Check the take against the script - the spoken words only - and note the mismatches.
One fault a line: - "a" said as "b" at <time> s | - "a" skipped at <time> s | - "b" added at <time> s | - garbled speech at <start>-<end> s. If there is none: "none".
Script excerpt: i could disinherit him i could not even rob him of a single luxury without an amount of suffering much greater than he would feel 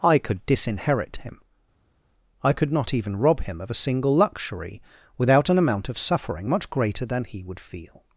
none